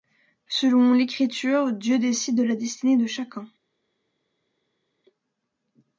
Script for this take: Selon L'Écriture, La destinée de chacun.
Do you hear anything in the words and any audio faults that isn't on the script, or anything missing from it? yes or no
yes